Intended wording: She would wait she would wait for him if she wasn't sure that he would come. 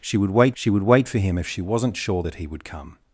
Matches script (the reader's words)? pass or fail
pass